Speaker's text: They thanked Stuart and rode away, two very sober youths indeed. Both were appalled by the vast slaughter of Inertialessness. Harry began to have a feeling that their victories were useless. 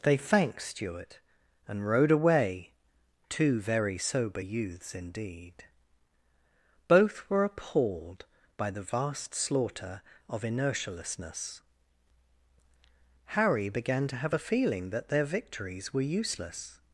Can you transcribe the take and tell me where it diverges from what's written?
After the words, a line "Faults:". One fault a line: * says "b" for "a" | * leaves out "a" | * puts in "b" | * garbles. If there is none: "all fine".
They thanked Stuart and rode away, two very sober youths indeed. Both were appalled by the vast slaughter of Inertialessness. Harry began to have a feeling that their victories were useless.
Faults:
all fine